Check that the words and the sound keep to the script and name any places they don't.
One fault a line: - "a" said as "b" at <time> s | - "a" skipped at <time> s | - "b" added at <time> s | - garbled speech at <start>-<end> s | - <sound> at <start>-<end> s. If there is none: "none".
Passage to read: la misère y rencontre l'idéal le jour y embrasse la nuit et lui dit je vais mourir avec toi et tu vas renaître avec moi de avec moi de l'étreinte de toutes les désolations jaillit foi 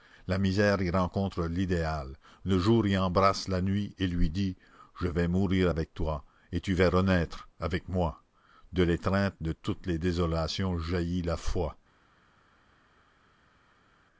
- "avec moi de" skipped at 8.8 s
- "la" added at 11.2 s